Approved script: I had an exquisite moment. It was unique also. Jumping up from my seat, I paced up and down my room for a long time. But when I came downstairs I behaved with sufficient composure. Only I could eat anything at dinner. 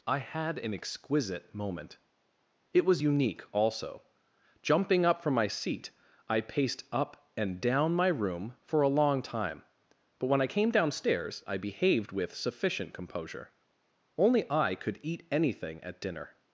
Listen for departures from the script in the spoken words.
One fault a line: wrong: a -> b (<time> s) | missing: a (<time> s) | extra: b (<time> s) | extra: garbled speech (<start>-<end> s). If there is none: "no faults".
no faults